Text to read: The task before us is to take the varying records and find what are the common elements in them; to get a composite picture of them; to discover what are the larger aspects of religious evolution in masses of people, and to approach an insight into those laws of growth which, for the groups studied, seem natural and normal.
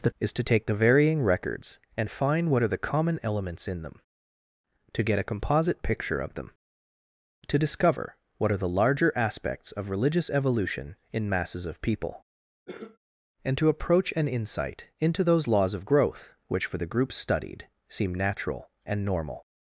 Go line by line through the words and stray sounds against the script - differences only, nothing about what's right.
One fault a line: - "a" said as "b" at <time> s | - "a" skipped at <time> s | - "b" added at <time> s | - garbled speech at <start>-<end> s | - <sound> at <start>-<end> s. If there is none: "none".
- "task before us" skipped at 0.1 s
- cough at 12.7-13.0 s